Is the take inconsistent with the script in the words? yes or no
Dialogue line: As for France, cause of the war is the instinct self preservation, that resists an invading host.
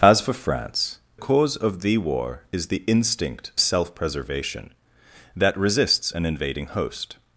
no